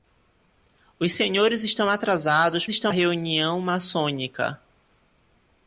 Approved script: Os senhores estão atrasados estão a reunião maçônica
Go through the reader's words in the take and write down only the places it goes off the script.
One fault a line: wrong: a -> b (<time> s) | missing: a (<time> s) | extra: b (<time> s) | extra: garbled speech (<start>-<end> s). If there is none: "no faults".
no faults